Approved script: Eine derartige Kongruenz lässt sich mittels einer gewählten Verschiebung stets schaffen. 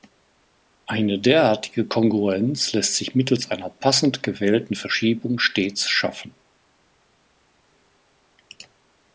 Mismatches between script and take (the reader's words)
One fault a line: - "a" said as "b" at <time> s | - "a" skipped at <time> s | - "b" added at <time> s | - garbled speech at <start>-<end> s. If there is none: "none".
- "passend" added at 3.7 s